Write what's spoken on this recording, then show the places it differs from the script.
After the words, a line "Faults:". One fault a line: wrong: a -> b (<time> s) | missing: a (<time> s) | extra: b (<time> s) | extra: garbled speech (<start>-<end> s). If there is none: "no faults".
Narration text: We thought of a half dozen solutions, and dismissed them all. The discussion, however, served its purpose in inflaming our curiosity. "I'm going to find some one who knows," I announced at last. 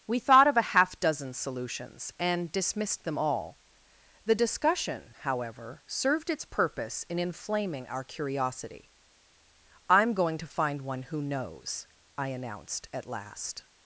We thought of a half dozen solutions, and dismissed them all. The discussion, however, served its purpose in inflaming our curiosity. "I'm going to find one who knows," I announced at last.
Faults:
missing: some (10.8 s)